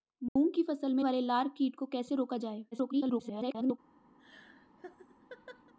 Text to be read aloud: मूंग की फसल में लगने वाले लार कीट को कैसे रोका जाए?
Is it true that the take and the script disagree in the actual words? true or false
true